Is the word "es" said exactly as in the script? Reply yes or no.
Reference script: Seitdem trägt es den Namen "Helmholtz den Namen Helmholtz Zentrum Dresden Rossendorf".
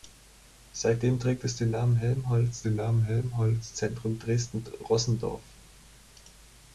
yes